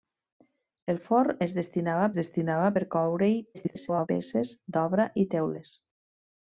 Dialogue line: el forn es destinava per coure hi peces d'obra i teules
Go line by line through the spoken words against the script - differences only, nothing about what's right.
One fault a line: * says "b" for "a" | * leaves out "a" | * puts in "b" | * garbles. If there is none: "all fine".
* puts in "destinava"
* garbles